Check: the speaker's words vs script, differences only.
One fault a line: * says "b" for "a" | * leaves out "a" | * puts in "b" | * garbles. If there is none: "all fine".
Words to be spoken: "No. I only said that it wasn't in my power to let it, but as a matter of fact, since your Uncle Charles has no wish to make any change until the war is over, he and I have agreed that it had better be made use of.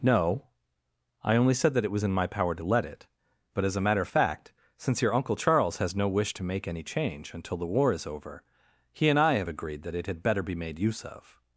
* says "was" for "wasn't"